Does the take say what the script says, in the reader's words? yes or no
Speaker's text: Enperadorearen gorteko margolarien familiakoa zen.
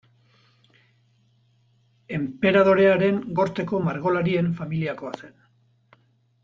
yes